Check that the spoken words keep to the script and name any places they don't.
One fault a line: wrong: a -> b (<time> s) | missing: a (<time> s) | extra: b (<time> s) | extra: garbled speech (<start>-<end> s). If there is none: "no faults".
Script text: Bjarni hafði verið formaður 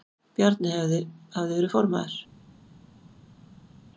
no faults